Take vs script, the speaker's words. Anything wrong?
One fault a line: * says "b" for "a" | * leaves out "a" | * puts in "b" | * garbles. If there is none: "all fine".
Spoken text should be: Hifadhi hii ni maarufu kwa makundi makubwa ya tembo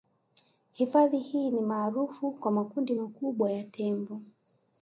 all fine